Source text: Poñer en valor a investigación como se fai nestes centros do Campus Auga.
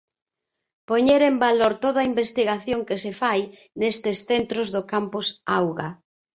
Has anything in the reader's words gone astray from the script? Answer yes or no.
yes